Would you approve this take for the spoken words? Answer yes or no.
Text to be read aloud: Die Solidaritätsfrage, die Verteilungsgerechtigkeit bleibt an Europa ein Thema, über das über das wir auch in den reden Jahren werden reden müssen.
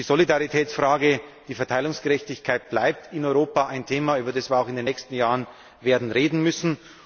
no